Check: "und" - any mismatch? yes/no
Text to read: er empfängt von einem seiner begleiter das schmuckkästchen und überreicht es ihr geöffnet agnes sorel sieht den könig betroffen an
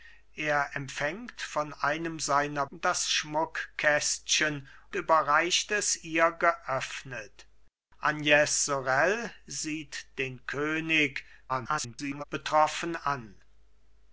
yes